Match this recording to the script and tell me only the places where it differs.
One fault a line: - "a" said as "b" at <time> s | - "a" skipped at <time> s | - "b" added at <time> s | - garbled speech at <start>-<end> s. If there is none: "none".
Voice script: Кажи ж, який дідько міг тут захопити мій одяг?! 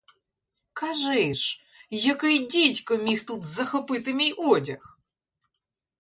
none